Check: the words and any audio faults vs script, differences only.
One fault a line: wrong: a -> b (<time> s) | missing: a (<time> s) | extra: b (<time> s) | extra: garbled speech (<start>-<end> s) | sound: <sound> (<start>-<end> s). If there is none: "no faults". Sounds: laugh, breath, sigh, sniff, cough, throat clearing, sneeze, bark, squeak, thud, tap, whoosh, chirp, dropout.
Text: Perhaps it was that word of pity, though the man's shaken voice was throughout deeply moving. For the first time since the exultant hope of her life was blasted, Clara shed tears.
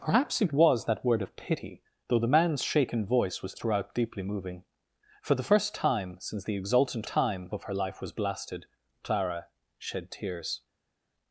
wrong: hope -> time (7.1 s)